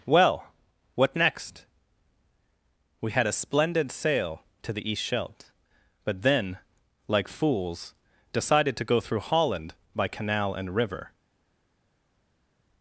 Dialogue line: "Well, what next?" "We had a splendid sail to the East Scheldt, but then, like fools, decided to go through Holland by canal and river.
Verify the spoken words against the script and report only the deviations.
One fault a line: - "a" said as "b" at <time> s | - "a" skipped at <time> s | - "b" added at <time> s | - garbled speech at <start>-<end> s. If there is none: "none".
none